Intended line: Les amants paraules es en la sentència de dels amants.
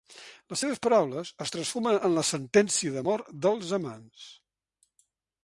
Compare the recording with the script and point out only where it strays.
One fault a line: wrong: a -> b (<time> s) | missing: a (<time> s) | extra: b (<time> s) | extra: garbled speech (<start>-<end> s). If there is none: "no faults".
wrong: amants -> seves (0.6 s)
extra: transformen (1.6 s)
extra: mort (3.1 s)